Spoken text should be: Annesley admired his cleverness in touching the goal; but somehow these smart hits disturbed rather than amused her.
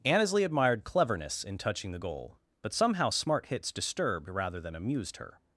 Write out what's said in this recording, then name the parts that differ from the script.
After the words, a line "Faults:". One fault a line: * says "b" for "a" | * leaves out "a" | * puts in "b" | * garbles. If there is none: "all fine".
Annesley admired cleverness in touching the goal; but somehow smart hits disturbed rather than amused her.
Faults:
* leaves out "his"
* leaves out "these"